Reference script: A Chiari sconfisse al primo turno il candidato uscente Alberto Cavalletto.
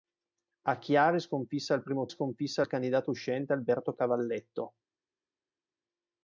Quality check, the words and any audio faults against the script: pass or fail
fail